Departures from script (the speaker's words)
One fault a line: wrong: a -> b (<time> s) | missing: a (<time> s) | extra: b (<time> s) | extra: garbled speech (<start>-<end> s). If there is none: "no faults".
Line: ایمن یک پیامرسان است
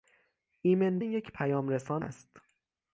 no faults